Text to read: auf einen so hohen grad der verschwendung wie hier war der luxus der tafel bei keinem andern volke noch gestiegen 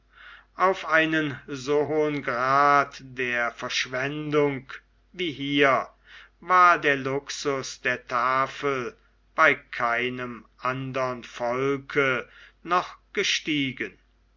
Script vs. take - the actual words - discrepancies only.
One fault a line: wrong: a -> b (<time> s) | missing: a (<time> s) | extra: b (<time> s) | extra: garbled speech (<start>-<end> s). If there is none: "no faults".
no faults